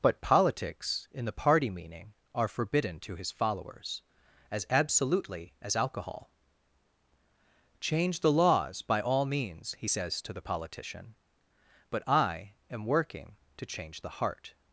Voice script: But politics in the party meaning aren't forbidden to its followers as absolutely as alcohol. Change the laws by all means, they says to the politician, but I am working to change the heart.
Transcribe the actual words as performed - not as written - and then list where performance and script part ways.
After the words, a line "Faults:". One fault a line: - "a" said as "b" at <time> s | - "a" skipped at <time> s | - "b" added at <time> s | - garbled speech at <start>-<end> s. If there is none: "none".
But politics in the party meaning are forbidden to his followers as absolutely as alcohol. Change the laws by all means, he says to the politician, but I am working to change the heart.
Faults:
- "aren't" said as "are" at 2.3 s
- "its" said as "his" at 3.2 s
- "they" said as "he" at 9.8 s